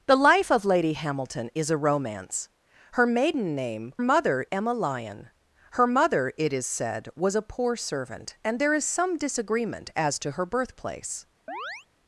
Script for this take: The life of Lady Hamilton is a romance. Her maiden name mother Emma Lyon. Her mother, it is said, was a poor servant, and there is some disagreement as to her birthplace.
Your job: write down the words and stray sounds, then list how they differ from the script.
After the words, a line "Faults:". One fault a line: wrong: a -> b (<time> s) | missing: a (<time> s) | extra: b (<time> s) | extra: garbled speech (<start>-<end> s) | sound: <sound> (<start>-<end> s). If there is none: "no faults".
The life of Lady Hamilton is a romance. Her maiden name mother Emma Lyon. Her mother, it is said, was a poor servant, and there is some disagreement as to her birthplace.
Faults:
sound: chirp (11.5-11.9 s)